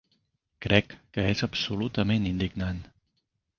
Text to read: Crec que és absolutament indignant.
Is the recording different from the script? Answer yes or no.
no